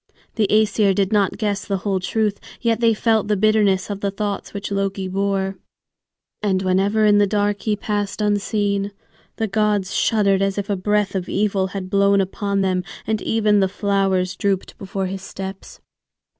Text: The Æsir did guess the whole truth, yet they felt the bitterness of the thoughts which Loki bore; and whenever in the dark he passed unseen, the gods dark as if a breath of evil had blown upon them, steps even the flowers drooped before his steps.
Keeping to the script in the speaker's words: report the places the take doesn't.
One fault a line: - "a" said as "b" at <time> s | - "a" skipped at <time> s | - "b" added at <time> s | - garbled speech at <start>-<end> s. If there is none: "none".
- "not" added at 1.1 s
- "dark" said as "shuddered" at 9.9 s
- "steps" said as "and" at 13.1 s